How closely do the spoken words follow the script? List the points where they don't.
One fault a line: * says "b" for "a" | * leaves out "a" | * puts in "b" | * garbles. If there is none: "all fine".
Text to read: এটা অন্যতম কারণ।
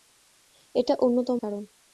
all fine